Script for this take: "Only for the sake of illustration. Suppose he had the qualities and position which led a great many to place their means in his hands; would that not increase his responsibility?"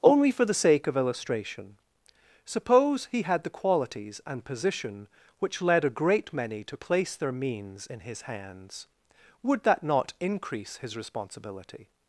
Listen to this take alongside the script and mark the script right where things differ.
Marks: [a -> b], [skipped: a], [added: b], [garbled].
"Only for the sake of illustration. Suppose he had the qualities and position which led a great many to place their means in his hands; would that not increase his responsibility?"